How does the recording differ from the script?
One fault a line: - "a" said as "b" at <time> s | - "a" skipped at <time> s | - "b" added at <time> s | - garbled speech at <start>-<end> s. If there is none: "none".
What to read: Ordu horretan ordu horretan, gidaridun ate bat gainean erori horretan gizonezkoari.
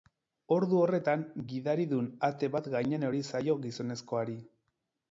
- "ordu horretan" skipped at 1.2 s
- "horretan" said as "zaio" at 3.3 s